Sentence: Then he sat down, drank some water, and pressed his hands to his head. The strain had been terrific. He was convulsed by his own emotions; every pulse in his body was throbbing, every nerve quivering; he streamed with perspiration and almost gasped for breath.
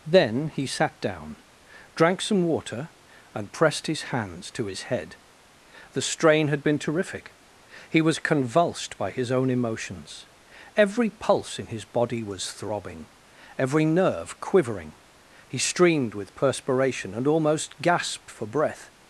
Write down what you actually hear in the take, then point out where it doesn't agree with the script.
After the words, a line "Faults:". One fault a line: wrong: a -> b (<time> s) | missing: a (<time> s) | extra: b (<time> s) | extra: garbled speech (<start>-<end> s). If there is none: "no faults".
Then he sat down, drank some water, and pressed his hands to his head. The strain had been terrific. He was convulsed by his own emotions; every pulse in his body was throbbing, every nerve quivering; he streamed with perspiration and almost gasped for breath.
Faults:
no faults